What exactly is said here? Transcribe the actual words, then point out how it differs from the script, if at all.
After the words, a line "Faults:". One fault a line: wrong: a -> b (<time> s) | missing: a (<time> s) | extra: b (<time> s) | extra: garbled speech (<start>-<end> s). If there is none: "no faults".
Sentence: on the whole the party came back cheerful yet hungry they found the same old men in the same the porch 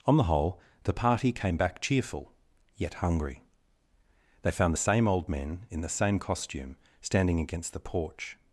on the whole the party came back cheerful yet hungry they found the same old men in the same costume standing against the porch
Faults:
extra: costume standing against (6.2 s)